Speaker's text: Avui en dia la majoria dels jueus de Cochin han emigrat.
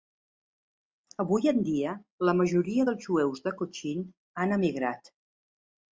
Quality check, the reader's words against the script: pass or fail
pass